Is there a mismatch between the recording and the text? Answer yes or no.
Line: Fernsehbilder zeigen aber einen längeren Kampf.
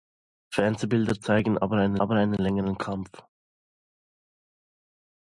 yes